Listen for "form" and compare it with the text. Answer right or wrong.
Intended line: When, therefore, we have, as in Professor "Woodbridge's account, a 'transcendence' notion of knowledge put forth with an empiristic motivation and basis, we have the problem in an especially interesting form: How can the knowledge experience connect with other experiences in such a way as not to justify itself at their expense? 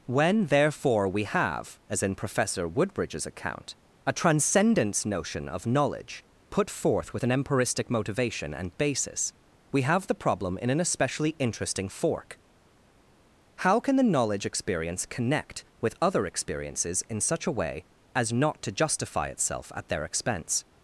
wrong